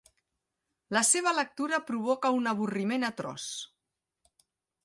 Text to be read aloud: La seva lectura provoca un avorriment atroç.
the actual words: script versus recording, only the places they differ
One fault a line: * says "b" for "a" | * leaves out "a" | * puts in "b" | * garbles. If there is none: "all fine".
all fine